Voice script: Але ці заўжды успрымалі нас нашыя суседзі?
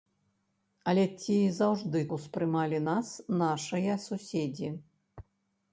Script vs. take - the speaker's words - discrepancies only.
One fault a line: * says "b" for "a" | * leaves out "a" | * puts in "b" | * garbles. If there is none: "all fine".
all fine